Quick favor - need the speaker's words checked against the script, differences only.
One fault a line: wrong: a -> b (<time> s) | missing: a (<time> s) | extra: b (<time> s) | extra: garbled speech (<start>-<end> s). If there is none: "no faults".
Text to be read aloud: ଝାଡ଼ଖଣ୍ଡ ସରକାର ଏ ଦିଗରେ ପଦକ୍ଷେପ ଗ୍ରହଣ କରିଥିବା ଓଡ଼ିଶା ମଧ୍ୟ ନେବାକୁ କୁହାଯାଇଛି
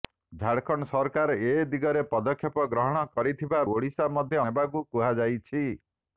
no faults